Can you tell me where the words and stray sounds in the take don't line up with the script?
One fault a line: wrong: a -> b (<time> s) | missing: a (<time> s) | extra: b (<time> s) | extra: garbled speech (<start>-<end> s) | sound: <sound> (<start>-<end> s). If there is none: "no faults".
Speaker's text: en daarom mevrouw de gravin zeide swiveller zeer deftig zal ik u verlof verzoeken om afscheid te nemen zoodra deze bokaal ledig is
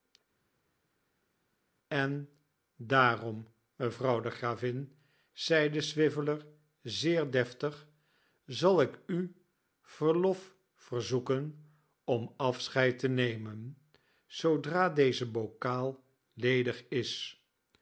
no faults